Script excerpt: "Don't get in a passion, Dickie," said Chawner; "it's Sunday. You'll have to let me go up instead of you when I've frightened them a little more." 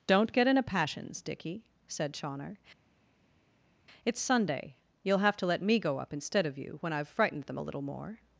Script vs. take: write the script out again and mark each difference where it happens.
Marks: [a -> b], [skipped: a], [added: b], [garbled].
"Don't get in a [passion, -> passions] Dickie," said Chawner; "it's Sunday. You'll have to let me go up instead of you when I've frightened them a little more."